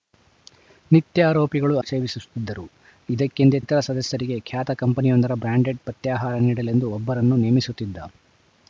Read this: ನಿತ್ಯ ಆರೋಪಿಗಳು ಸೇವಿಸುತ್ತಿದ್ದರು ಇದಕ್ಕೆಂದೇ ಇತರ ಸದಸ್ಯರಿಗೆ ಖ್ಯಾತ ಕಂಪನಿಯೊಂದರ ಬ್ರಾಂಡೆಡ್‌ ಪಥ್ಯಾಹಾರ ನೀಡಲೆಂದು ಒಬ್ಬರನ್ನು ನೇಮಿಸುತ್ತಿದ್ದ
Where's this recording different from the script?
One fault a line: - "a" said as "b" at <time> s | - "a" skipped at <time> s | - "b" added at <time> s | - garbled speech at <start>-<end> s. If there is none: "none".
none